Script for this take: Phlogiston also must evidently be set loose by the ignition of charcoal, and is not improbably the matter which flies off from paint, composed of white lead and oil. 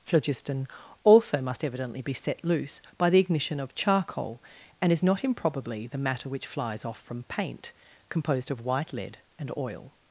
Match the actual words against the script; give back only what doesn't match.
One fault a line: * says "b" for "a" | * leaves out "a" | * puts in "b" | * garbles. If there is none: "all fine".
all fine